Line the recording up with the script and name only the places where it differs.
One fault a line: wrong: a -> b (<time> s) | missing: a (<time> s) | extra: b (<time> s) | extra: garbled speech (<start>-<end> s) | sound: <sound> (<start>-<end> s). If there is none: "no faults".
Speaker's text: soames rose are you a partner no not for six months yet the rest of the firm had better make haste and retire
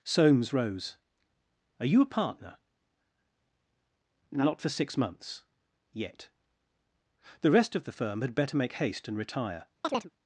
sound: chirp (9.8-10.1 s)